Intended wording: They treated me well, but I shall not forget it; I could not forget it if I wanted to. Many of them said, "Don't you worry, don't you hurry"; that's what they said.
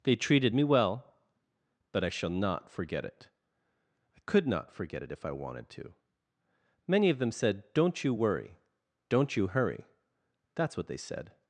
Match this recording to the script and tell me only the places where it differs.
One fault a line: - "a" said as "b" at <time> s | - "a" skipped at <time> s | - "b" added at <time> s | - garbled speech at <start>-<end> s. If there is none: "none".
none